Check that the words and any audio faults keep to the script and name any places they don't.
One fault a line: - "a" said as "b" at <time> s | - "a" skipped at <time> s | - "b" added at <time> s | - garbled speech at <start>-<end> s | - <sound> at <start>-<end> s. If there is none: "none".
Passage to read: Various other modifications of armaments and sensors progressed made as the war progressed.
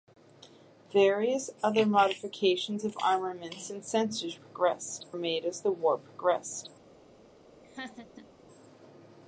- laugh at 7.6-8.3 s